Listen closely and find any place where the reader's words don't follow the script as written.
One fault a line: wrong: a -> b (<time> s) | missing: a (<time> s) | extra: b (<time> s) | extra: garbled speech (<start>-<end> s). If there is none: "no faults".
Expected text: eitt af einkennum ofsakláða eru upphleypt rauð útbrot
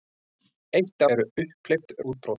missing: af einkennum ofsakláða (1.0 s)
missing: rauð (2.0 s)